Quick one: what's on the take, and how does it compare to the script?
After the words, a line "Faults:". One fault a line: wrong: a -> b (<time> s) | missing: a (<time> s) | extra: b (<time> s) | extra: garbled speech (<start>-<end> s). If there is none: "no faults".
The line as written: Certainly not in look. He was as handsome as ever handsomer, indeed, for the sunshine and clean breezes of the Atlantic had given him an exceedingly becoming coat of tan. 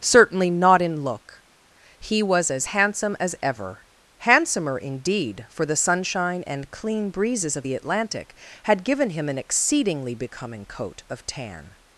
Certainly not in look. He was as handsome as ever handsomer, indeed, for the sunshine and clean breezes of the Atlantic had given him an exceedingly becoming coat of tan.
Faults:
no faults